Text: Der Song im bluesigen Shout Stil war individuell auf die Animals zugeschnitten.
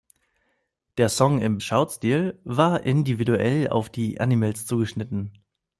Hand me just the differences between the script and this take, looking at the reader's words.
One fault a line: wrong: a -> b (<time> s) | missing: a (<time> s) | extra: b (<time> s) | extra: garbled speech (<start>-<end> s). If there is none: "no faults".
missing: bluesigen (1.6 s)